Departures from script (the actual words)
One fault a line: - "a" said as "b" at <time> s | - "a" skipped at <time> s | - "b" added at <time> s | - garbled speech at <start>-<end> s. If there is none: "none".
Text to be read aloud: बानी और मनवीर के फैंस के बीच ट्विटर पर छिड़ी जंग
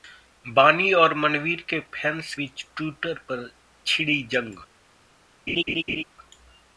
- "के" skipped at 2.3 s